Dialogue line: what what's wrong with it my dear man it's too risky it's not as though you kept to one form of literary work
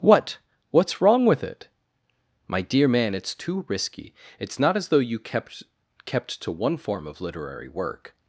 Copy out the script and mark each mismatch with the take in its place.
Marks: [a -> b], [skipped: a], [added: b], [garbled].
what what's wrong with it my dear man it's too risky it's not as though you kept [added: kept] to one form of literary work